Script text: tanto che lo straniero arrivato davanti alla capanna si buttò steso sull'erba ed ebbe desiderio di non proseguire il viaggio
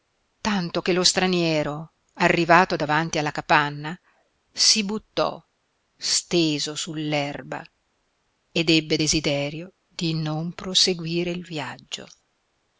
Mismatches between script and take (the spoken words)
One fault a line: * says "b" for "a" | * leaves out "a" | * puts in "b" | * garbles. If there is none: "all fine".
all fine